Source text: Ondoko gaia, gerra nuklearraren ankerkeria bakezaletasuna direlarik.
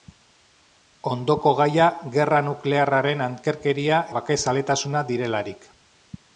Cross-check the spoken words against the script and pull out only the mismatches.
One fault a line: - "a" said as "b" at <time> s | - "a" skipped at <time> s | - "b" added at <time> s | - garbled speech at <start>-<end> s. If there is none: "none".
none